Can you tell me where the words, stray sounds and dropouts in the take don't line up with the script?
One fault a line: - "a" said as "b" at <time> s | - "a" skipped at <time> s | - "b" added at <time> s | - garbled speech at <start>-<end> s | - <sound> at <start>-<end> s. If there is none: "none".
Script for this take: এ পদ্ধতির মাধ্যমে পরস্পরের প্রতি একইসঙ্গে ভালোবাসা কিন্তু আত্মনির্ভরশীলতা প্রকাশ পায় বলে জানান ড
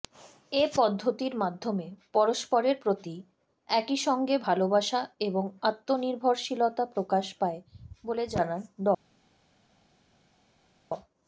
- "কিন্তু" said as "এবং" at 5.2 s